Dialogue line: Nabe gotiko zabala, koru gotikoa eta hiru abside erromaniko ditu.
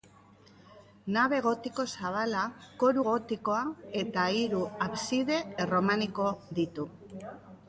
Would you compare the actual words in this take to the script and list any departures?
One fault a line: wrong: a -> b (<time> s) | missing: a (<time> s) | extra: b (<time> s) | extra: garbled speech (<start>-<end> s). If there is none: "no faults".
no faults